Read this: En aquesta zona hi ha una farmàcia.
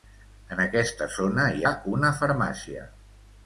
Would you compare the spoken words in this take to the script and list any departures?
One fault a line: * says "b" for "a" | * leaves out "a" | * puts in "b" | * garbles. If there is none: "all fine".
all fine